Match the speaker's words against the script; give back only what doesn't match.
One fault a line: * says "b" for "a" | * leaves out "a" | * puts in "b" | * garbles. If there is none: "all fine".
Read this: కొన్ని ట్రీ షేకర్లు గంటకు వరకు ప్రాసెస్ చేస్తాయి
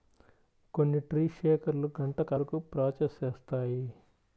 all fine